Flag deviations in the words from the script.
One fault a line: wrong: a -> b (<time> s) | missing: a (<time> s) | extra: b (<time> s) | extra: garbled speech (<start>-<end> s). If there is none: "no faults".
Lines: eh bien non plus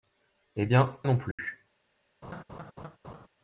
no faults